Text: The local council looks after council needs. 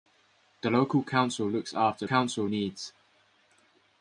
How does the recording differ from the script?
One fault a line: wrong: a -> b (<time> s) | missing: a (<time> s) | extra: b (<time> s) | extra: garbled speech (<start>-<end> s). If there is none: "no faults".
no faults